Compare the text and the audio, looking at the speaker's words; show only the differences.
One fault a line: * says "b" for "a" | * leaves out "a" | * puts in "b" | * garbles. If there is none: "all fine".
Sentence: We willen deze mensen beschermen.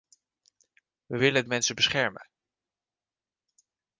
* leaves out "deze"